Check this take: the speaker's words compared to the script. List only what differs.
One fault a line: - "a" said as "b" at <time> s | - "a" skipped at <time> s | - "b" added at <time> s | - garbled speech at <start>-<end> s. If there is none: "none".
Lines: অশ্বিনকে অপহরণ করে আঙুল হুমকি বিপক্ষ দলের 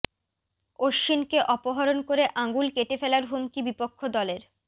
- "কেটে ফেলার" added at 2.8 s